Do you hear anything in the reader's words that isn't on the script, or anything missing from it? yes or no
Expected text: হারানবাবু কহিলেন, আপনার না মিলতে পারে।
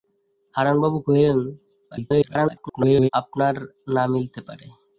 yes